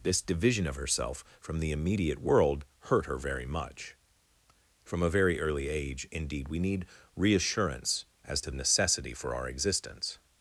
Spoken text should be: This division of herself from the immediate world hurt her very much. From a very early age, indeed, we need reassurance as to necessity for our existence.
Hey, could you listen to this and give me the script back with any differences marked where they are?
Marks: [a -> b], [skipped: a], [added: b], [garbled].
This division of herself from the immediate world hurt her very much. From a very early age, indeed, we need reassurance as to necessity for our existence.